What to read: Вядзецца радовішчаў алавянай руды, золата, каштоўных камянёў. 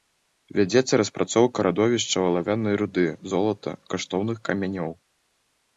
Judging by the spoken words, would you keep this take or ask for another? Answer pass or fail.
fail